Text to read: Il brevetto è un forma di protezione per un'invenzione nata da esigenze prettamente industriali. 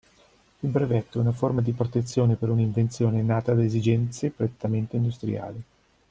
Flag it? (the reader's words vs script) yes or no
yes